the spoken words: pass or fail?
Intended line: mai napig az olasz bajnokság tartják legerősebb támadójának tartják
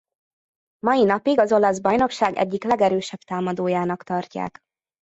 fail